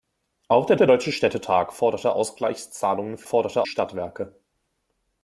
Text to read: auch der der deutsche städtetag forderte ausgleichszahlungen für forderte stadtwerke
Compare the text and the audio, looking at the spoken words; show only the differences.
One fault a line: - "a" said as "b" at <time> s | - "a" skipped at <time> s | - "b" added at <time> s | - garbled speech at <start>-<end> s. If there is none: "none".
none